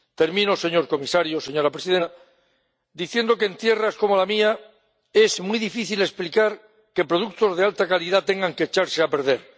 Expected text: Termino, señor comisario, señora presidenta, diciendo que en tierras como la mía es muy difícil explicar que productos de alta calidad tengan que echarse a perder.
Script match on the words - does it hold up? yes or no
yes